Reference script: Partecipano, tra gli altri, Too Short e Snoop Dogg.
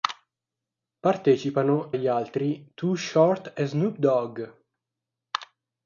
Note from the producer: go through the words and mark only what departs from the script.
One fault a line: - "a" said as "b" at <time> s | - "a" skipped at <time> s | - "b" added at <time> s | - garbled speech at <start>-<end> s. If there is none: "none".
- "tra" skipped at 1.9 s